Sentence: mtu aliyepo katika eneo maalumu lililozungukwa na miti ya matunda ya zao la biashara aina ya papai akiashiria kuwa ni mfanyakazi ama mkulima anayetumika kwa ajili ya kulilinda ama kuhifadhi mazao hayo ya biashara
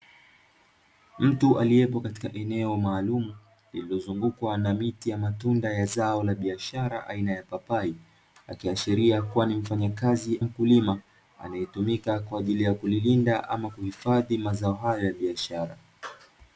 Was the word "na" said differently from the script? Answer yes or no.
no